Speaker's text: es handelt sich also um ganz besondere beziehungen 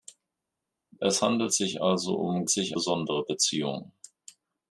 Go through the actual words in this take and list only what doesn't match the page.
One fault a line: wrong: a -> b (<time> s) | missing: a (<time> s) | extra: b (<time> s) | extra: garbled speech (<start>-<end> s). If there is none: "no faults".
wrong: ganz -> sich (2.5 s)